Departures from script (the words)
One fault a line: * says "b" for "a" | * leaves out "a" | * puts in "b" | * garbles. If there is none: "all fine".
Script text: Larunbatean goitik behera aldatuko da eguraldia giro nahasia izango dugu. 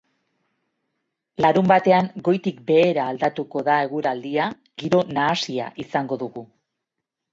all fine